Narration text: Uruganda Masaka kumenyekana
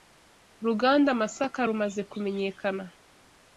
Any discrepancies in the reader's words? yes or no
yes